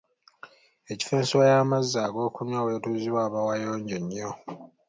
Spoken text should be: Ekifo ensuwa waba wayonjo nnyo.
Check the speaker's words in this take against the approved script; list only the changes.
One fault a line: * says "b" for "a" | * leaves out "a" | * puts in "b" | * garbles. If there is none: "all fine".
* puts in "y'amazzi ag'okunywa w'etuuzibwa"